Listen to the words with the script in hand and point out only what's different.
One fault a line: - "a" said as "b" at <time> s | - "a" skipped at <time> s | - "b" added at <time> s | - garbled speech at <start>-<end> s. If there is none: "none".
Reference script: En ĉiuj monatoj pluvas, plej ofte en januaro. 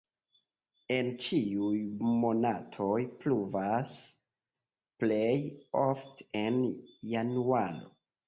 none